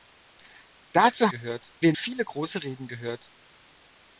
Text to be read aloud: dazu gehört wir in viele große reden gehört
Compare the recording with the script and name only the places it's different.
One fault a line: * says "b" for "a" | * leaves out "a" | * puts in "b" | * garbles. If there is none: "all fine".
all fine